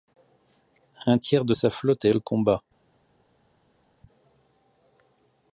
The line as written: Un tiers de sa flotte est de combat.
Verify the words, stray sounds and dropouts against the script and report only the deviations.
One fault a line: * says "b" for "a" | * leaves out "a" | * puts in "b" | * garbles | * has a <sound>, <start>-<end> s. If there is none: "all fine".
all fine